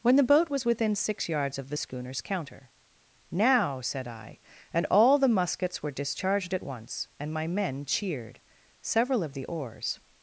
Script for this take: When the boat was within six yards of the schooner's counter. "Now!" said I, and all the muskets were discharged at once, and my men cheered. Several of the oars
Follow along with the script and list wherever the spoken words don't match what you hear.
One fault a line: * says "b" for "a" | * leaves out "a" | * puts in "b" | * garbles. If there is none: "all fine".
all fine